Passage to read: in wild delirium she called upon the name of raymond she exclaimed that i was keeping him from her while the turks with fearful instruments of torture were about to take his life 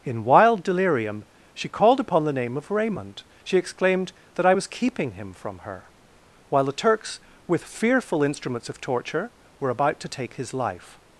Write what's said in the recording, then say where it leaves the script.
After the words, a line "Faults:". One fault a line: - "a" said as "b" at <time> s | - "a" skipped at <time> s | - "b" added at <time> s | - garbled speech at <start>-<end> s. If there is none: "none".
in wild delirium she called upon the name of raymond she exclaimed that i was keeping him from her while the turks with fearful instruments of torture were about to take his life
Faults:
none